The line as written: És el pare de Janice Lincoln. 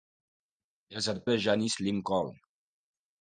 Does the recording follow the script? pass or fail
fail